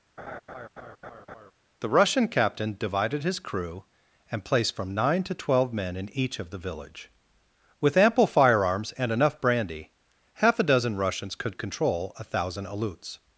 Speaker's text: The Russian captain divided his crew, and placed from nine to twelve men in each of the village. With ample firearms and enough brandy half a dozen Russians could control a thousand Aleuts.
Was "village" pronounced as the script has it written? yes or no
yes